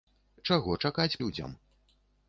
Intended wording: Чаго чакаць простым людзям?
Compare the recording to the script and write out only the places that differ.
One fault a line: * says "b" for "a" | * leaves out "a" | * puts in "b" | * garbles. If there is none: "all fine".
* leaves out "простым"